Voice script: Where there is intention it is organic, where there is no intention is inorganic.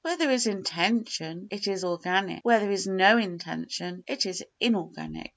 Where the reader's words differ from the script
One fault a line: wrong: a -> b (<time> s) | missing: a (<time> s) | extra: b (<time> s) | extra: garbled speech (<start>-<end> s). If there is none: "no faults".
extra: it (4.1 s)